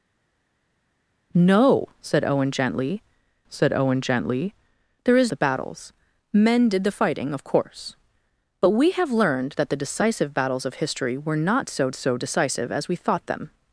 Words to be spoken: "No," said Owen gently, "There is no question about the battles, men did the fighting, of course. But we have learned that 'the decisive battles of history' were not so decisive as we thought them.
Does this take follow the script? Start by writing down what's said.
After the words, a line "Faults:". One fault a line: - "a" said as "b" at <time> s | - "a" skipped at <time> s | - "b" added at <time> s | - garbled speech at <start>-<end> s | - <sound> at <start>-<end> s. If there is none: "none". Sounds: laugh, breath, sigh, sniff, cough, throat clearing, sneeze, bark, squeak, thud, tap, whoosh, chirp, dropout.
"No," said Owen gently said Owen gently, "There is the battles, men did the fighting, of course. But we have learned that 'the decisive battles of history' were not so so decisive as we thought them.
Faults:
- "There is no question about" said as "said Owen gently There is" at 3.5 s
- "so" added at 11.9 s